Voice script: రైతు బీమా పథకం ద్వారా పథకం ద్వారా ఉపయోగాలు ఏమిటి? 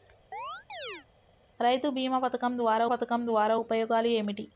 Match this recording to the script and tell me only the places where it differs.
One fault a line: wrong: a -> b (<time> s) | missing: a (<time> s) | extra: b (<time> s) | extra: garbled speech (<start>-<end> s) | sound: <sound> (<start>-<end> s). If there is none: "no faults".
sound: chirp (0.3-1.1 s)